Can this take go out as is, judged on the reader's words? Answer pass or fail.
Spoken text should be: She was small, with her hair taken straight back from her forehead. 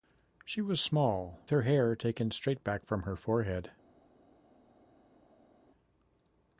fail